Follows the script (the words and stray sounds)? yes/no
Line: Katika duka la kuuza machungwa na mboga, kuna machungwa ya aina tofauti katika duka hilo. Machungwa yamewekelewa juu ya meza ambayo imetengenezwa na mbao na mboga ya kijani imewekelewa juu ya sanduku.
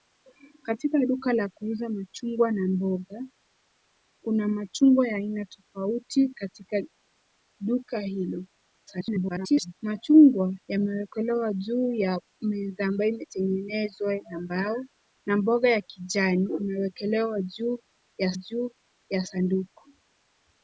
no